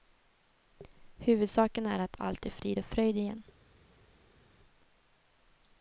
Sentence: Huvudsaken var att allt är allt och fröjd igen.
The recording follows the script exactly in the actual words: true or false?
false